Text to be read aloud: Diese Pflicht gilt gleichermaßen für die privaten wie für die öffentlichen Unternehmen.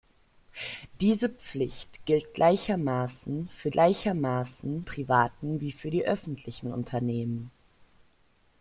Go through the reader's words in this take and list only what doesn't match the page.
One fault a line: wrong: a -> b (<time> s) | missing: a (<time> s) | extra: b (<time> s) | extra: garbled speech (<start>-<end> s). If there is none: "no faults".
wrong: die -> gleichermaßen (3.7 s)